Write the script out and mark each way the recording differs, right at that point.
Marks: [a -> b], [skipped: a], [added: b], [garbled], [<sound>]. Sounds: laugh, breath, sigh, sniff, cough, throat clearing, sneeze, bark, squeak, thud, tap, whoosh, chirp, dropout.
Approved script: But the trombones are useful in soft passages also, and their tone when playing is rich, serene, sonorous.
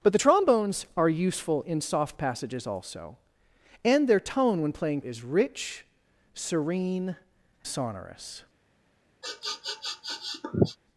But the trombones are useful in soft passages also, and their tone when playing is rich, serene, sonorous. [sniff]